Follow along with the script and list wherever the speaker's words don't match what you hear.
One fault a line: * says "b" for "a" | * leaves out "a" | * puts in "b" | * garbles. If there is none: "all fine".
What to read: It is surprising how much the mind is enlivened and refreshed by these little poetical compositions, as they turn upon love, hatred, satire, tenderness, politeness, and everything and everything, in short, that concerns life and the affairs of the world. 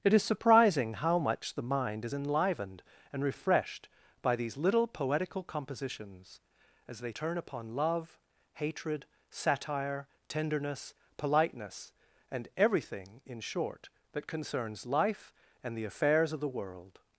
* leaves out "and everything"